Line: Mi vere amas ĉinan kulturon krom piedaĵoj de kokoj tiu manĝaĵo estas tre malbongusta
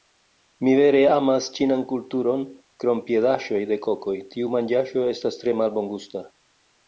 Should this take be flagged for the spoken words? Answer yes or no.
no